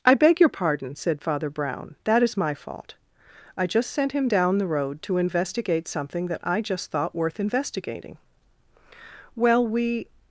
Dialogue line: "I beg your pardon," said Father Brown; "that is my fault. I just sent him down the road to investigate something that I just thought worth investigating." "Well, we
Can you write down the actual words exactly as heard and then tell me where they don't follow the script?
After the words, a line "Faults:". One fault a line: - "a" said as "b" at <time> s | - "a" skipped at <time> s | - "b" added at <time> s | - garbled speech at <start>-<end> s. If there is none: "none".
"I beg your pardon," said Father Brown; "that is my fault. I just sent him down the road to investigate something that I just thought worth investigating." "Well, we
Faults:
none